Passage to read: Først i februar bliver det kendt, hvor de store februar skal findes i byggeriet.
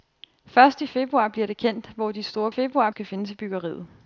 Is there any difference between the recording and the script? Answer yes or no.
no